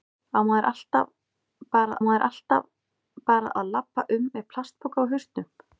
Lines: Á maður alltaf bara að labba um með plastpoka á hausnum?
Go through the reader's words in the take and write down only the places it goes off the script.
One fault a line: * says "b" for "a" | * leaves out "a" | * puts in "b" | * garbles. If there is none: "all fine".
* puts in "maður alltaf bara"